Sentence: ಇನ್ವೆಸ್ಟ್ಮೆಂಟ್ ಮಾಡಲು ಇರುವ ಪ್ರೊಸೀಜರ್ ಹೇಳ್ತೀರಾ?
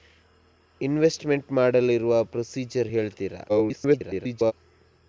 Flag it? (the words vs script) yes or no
yes